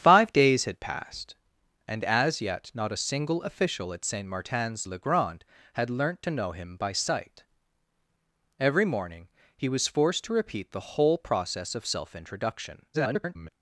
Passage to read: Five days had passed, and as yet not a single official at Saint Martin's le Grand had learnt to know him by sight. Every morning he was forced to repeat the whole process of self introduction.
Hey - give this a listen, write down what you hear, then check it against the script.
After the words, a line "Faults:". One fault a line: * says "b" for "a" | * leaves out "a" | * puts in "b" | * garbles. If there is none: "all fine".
Five days had passed, and as yet not a single official at Saint Martin's le Grand had learnt to know him by sight. Every morning he was forced to repeat the whole process of self introduction. [garbled]
Faults:
* garbles